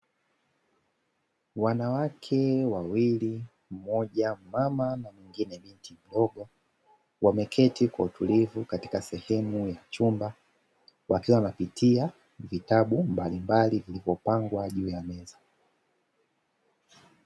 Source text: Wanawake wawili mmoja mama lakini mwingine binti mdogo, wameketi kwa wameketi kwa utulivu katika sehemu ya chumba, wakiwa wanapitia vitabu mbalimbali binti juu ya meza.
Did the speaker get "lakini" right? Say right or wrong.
wrong